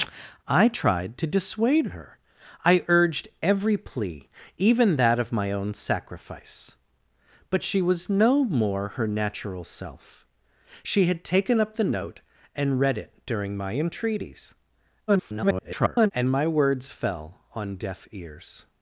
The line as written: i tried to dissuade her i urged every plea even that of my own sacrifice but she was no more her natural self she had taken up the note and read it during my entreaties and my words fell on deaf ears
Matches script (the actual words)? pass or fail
fail